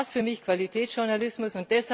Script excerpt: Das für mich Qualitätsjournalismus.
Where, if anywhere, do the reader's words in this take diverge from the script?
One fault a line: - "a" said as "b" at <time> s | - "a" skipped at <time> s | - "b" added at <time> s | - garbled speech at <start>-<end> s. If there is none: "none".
none